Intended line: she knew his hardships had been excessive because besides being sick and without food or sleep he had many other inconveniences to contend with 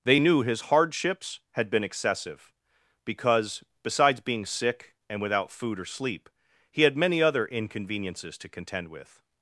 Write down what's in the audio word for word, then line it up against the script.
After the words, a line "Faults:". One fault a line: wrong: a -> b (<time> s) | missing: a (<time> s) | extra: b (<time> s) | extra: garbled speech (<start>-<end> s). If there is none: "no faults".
they knew his hardships had been excessive because besides being sick and without food or sleep he had many other inconveniences to contend with
Faults:
wrong: she -> they (0.0 s)